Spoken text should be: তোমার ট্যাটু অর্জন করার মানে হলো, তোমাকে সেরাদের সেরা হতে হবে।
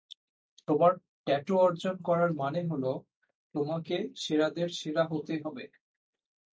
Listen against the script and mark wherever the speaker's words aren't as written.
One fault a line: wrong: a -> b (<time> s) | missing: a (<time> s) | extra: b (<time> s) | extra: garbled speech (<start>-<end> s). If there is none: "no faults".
no faults